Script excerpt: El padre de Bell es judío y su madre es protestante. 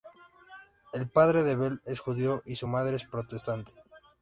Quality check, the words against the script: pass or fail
pass